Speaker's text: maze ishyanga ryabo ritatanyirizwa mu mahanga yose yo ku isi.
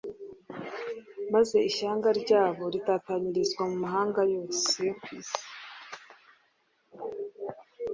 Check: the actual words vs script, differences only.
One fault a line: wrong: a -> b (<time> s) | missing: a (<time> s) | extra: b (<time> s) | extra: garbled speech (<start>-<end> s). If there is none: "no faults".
no faults